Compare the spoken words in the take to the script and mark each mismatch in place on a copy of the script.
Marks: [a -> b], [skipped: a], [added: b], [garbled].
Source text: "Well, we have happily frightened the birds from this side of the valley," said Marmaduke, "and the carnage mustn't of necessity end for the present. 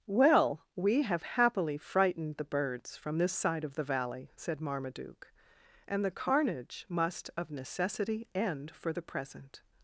"Well, we have happily frightened the birds from this side of the valley," said Marmaduke, "and the carnage [mustn't -> must] of necessity end for the present.